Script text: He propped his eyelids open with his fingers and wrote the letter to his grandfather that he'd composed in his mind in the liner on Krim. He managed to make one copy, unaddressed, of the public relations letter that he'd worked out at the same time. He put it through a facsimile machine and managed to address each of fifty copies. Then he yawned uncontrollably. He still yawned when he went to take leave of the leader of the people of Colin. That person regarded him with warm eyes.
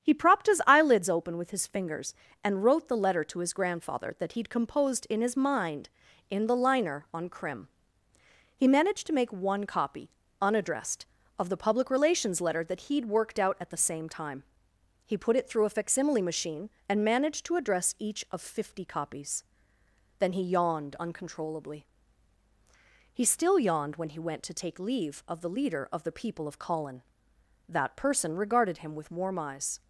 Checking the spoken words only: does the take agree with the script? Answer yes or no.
yes